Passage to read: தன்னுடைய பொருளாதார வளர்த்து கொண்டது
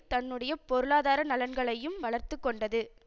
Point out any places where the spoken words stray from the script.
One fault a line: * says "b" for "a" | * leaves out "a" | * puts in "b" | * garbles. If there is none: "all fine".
* puts in "நலன்களையும்"